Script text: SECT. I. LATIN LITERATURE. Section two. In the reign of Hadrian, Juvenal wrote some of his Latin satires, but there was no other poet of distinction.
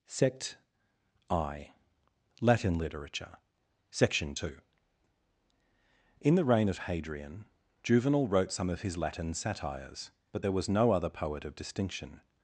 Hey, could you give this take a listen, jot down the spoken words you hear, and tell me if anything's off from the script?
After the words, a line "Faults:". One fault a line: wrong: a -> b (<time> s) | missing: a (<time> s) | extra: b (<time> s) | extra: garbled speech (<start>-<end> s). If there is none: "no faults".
SECT. I. LATIN LITERATURE. Section two. In the reign of Hadrian, Juvenal wrote some of his Latin satires, but there was no other poet of distinction.
Faults:
no faults